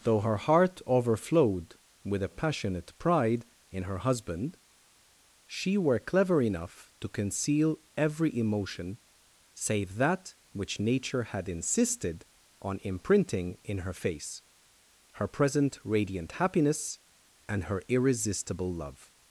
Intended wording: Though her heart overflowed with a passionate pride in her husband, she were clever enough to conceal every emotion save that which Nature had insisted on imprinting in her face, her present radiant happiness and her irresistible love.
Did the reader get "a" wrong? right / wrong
right